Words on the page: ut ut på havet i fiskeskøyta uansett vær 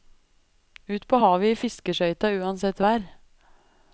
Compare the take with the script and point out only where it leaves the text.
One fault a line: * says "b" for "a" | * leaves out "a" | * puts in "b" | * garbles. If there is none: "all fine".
* leaves out "ut"